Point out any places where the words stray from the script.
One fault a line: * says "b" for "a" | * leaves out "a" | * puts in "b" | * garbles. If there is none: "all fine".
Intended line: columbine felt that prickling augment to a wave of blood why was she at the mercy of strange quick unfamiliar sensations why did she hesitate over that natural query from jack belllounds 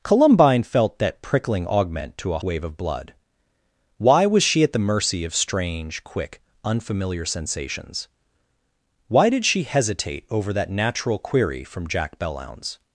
all fine